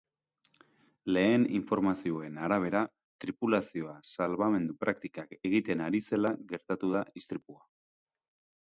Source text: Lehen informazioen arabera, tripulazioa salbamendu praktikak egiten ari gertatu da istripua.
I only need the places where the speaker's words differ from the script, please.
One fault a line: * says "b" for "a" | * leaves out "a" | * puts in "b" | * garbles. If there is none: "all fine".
* puts in "zela"